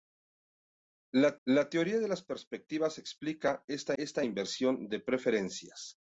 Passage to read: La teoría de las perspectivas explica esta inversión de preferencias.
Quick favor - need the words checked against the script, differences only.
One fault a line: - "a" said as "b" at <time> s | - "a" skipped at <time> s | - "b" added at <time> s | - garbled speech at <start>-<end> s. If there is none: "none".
- "la" added at 1.5 s
- "esta" added at 4.0 s